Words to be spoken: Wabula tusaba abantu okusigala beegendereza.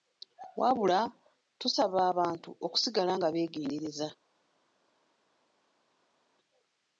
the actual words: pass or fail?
fail